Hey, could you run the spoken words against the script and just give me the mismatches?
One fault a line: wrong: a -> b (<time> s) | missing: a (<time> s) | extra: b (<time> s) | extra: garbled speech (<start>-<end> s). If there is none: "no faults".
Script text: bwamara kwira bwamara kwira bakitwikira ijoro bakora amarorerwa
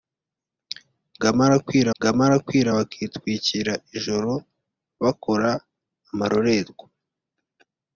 no faults